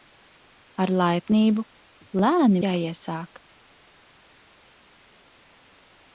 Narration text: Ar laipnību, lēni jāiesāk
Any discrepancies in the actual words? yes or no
no